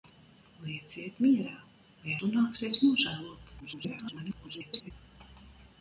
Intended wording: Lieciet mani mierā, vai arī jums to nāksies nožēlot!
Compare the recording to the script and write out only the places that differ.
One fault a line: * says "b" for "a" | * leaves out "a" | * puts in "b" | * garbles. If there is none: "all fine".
* leaves out "mani"
* leaves out "arī jums"
* garbles